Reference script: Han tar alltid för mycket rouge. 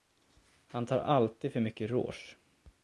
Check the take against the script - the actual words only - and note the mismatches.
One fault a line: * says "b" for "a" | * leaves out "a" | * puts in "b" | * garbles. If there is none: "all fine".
all fine